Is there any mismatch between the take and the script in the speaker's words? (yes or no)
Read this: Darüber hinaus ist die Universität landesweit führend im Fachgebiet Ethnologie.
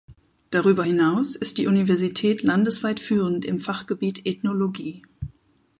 no